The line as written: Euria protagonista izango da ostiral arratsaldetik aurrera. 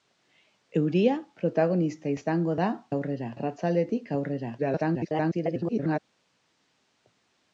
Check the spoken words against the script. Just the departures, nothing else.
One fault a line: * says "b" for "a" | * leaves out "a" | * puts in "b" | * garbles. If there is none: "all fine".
* says "aurrera" for "ostiral"
* garbles